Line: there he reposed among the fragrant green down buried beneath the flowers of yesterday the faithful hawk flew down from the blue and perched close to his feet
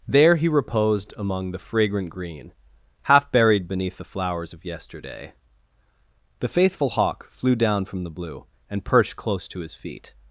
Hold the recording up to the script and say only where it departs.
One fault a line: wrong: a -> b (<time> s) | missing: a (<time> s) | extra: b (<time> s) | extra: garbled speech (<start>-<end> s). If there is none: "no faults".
wrong: down -> half (3.0 s)